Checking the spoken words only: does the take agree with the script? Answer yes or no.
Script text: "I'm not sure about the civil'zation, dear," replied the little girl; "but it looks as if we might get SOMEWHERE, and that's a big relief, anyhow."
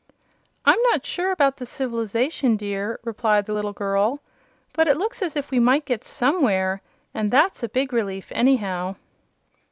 yes